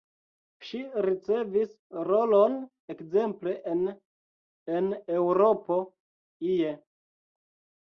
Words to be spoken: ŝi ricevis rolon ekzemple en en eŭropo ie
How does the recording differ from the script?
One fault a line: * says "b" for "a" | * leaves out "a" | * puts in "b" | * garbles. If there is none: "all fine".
all fine